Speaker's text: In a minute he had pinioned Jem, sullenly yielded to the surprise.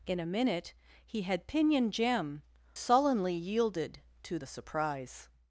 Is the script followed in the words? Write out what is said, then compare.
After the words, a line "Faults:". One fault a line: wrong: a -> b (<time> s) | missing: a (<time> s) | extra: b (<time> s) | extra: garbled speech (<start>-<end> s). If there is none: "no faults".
In a minute he had pinioned Jem, sullenly yielded to the surprise.
Faults:
no faults